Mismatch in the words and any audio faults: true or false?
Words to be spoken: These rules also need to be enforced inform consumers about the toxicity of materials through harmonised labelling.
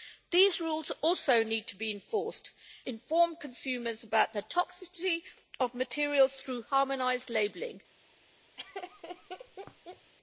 true